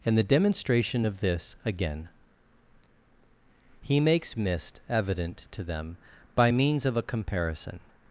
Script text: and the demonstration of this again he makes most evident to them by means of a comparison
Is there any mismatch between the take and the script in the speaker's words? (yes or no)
yes